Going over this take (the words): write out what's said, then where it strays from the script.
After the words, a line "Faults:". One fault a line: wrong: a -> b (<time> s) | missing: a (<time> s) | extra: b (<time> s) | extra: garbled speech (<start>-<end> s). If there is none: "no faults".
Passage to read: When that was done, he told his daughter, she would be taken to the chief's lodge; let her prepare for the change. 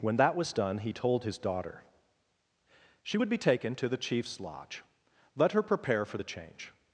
When that was done, he told his daughter, she would be taken to the chief's lodge; let her prepare for the change.
Faults:
no faults